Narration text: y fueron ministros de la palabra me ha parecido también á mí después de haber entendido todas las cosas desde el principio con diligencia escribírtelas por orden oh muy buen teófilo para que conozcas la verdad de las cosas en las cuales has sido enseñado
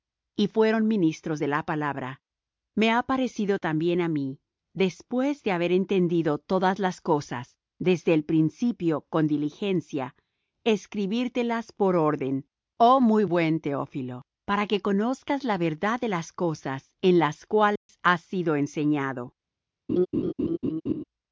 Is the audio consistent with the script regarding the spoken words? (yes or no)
yes